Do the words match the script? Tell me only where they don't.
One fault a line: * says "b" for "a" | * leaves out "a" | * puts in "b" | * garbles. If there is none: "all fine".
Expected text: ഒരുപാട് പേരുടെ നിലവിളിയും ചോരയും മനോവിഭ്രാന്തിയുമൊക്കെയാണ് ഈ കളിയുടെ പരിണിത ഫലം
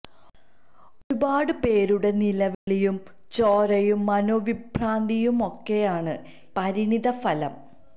* leaves out "ഈ കളിയുടെ"